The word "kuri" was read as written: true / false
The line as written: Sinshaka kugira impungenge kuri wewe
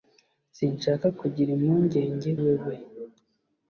false